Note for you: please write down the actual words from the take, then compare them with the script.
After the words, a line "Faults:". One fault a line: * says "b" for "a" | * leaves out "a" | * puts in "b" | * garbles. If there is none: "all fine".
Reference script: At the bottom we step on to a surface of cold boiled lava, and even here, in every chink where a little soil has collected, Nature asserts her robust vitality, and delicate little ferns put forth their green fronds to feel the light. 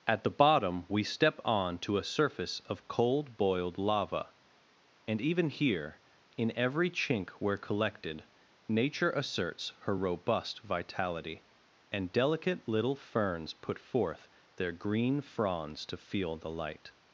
At the bottom we step on to a surface of cold boiled lava, and even here, in every chink where collected, Nature asserts her robust vitality, and delicate little ferns put forth their green fronds to feel the light.
Faults:
* leaves out "a little soil has"